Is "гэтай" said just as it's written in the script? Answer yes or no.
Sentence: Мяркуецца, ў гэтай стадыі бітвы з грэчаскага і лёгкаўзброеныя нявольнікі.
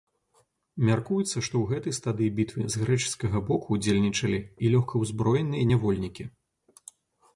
yes